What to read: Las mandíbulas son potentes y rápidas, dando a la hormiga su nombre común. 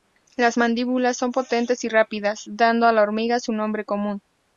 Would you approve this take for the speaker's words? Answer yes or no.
yes